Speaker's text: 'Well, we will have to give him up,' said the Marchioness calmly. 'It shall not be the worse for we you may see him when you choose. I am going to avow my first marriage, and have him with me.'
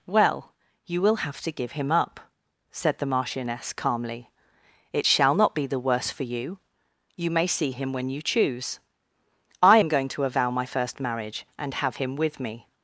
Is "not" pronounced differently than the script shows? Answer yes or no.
no